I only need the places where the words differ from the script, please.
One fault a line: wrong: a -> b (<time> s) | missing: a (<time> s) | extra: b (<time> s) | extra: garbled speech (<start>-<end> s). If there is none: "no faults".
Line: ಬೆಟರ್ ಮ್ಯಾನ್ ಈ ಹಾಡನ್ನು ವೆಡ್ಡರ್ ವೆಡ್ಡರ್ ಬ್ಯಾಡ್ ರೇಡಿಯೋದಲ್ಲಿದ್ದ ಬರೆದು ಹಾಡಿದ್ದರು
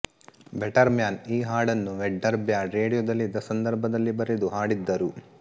missing: ವೆಡ್ಡರ್ (2.4 s)
extra: ಸಂದರ್ಭದಲ್ಲಿ (3.5 s)